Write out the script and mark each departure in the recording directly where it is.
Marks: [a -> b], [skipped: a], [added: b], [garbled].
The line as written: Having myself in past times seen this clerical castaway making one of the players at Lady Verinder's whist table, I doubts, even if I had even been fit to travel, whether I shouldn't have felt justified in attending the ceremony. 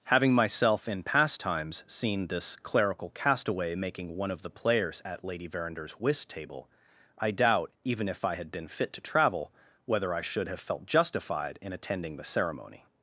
Having myself in past times seen this clerical castaway making one of the players at Lady Verinder's whist table, I [doubts, -> doubt] even if I had [skipped: even] been fit to travel, whether I [shouldn't -> should] have felt justified in attending the ceremony.